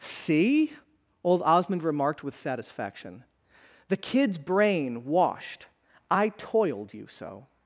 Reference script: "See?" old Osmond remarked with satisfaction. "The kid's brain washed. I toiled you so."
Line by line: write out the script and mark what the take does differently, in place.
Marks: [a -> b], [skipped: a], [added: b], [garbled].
"See?" old Osmond remarked with satisfaction. "The kid's brain washed. I toiled you so."